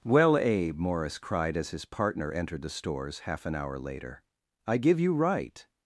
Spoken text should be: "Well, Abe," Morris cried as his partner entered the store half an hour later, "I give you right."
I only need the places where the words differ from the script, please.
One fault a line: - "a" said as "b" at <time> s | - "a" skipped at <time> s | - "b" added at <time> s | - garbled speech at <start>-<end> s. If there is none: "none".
- "store" said as "stores" at 2.7 s